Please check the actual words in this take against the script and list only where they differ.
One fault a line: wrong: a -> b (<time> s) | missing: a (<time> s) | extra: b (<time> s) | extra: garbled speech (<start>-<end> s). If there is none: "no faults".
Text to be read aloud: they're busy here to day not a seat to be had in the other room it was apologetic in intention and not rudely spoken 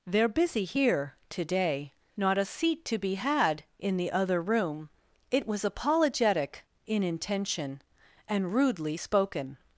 missing: not (8.5 s)